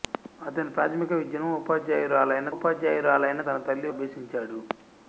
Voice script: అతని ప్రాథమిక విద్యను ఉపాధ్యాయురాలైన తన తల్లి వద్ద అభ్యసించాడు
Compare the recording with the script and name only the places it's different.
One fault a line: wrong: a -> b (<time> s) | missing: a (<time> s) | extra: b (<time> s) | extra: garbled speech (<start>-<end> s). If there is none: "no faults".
extra: ఉపాధ్యాయురాలైన (2.5 s)
missing: వద్ద (3.9 s)